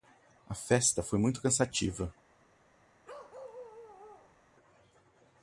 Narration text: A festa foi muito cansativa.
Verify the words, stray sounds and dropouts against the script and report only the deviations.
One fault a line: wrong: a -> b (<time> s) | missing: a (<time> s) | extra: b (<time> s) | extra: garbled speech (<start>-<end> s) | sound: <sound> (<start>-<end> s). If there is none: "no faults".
sound: bark (3.0-4.4 s)